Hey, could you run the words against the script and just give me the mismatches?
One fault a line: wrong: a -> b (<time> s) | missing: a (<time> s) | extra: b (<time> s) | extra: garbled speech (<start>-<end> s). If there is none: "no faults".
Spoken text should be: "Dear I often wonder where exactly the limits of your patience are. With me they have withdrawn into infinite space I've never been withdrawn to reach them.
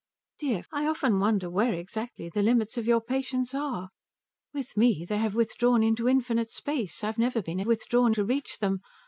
no faults